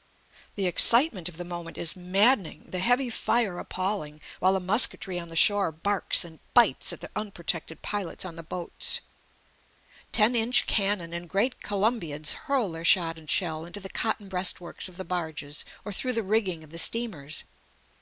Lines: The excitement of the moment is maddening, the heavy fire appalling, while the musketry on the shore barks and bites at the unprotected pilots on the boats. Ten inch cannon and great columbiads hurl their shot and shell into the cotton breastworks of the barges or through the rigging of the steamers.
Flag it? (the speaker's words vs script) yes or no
no